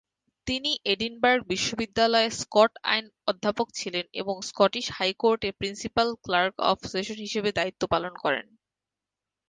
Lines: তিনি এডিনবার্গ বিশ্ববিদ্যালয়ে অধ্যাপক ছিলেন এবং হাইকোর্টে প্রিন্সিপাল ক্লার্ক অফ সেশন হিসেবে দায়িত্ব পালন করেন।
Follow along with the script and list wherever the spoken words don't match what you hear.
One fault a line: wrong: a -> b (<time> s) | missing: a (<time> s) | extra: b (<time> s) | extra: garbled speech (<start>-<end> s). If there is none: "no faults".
extra: স্কট আইন (2.4 s)
extra: স্কটিশ (4.5 s)